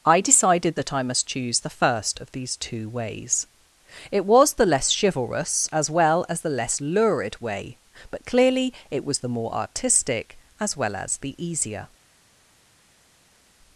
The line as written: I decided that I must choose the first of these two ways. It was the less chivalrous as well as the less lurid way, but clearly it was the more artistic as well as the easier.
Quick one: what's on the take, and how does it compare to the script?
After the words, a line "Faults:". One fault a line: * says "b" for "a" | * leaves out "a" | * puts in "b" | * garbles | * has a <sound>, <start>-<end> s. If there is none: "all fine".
I decided that I must choose the first of these two ways. It was the less chivalrous as well as the less lurid way, but clearly it was the more artistic as well as the easier.
Faults:
all fine